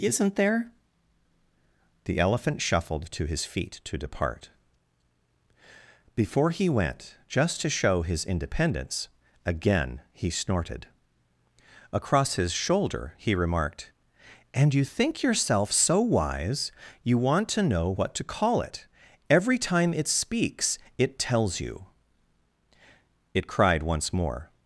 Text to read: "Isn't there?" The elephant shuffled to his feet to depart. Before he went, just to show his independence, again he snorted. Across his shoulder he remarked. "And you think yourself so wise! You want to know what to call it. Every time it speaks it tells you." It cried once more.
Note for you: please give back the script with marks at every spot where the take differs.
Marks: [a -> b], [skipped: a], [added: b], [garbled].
"Isn't there?" The elephant shuffled to his feet to depart. Before he went, just to show his independence, again he snorted. Across his shoulder he remarked. "And you think yourself so wise! You want to know what to call it. Every time it speaks it tells you." It cried once more.